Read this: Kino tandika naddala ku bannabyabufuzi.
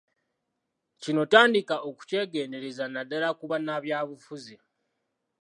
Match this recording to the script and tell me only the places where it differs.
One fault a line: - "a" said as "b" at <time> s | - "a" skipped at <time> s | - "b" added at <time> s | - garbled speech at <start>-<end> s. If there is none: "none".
- "okukyegendereza" added at 1.9 s